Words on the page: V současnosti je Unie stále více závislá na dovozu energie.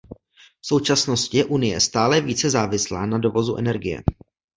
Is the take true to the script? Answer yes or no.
yes